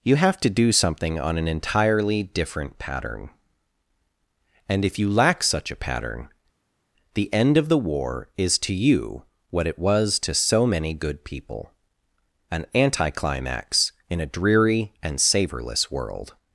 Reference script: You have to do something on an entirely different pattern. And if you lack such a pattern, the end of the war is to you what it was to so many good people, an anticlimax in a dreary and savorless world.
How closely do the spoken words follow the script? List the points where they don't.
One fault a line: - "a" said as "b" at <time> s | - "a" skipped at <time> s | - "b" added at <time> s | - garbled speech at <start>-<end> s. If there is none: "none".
none